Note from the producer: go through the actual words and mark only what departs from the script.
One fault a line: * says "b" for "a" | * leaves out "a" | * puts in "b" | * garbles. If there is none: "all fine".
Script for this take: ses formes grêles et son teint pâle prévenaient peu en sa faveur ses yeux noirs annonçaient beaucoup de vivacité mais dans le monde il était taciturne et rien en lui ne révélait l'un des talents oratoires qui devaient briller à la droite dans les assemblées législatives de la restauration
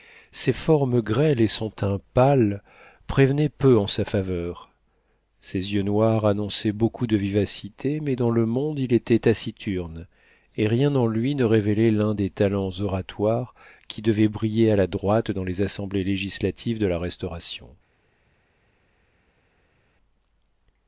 all fine